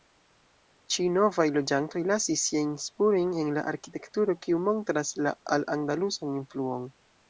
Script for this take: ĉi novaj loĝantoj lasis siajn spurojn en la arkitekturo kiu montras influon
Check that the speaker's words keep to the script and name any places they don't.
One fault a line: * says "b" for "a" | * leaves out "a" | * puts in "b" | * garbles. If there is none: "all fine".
* puts in "la al andalusan"